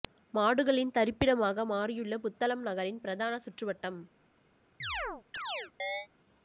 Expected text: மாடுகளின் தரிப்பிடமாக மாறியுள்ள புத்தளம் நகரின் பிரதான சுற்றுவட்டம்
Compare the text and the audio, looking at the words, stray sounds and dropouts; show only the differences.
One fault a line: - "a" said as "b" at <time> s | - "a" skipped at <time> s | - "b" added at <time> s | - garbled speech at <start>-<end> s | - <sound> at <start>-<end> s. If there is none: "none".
- chirp at 4.8-6.1 s